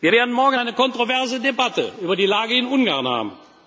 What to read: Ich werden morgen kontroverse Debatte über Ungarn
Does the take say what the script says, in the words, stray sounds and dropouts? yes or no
no